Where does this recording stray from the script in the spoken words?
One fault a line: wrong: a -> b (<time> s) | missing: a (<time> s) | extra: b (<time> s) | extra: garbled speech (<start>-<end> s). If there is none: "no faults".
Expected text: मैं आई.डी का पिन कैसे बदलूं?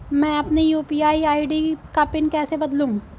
extra: अपनी यू.पी.आई (0.4 s)